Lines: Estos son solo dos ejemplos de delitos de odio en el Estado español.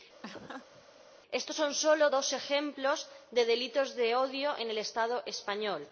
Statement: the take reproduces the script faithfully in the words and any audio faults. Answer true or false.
false